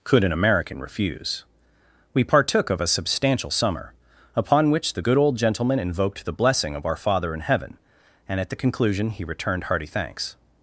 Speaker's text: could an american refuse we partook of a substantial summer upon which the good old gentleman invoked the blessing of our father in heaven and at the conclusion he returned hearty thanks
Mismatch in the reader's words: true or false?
false